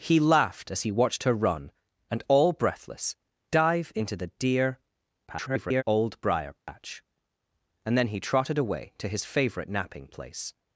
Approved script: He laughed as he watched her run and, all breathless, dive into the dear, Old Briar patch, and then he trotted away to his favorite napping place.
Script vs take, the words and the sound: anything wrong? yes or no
yes